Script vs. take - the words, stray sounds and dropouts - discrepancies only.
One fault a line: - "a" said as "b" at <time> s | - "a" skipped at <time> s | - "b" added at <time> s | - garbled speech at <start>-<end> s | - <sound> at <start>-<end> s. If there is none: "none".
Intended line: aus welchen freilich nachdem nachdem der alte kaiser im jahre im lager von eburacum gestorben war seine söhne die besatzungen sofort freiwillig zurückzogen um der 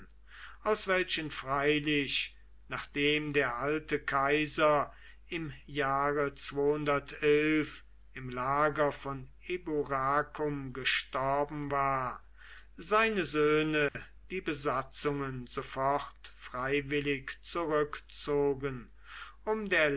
- "nachdem" skipped at 3.3 s
- dropout at 13.9-13.9 s